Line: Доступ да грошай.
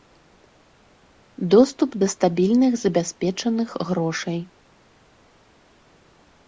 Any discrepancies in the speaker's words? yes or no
yes